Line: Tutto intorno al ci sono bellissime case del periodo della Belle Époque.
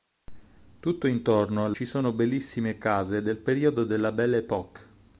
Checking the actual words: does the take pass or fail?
pass